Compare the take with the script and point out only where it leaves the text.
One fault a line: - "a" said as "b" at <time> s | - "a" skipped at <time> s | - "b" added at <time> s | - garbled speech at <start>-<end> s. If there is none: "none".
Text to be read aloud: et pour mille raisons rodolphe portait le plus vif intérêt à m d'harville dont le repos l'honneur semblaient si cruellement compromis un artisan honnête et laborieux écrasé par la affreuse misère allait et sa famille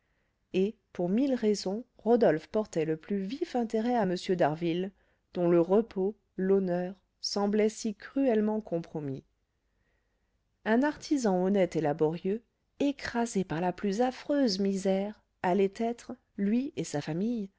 - "plus" added at 13.7 s
- "être lui" added at 15.8 s